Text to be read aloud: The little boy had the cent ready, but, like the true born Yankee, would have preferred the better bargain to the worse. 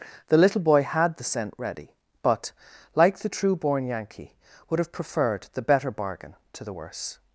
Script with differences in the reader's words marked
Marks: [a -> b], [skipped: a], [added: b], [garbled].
The little boy had the cent ready, but, like the true born Yankee, would have preferred the better bargain to the worse.